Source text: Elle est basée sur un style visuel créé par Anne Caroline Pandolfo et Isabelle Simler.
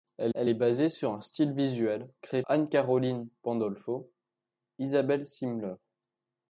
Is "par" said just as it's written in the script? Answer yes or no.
no